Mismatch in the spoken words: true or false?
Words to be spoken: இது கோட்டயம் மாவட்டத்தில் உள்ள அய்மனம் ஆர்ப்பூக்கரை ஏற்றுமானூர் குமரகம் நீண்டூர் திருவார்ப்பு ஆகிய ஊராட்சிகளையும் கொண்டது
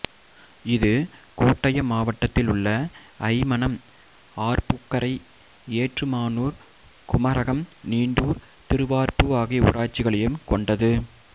false